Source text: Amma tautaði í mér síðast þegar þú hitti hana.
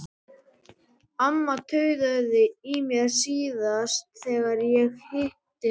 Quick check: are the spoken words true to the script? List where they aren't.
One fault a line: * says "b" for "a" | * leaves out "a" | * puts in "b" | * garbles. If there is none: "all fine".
* says "ég" for "þú"